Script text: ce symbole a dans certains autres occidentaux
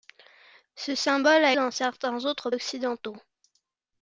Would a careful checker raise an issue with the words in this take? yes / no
no